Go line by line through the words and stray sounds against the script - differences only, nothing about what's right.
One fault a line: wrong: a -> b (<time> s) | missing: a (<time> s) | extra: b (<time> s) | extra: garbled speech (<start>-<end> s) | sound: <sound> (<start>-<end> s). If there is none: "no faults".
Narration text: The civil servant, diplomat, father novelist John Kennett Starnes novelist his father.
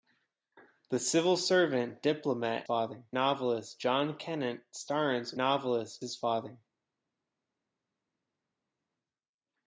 no faults